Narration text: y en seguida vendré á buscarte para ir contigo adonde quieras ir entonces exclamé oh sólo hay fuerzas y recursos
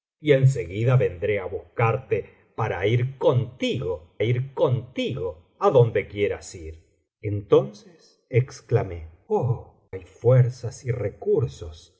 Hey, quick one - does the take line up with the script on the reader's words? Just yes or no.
no